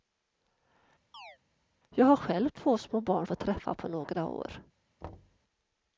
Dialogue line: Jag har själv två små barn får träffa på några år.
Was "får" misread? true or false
false